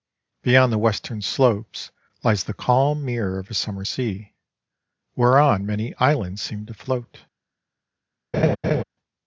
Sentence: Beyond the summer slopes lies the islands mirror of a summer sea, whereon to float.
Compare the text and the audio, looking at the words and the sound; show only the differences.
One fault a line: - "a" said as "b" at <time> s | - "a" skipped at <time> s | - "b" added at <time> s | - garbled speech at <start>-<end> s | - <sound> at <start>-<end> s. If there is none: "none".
- "summer" said as "western" at 0.8 s
- "islands" said as "calm" at 2.5 s
- "many islands seem" added at 5.6 s
- laugh at 8.3-8.8 s